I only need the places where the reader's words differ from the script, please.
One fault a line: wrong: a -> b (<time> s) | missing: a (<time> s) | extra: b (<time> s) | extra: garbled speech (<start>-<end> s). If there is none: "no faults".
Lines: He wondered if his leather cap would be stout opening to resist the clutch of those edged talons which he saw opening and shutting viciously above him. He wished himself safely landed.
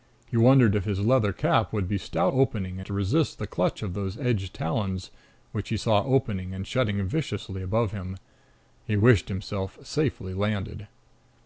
no faults